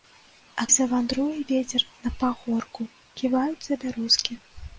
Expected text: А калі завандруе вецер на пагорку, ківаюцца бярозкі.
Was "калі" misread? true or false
true